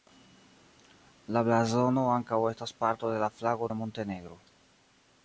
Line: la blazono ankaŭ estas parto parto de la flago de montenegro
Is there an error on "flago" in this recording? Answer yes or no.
no